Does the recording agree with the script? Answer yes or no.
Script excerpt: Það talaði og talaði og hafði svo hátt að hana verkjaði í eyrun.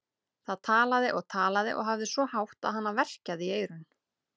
yes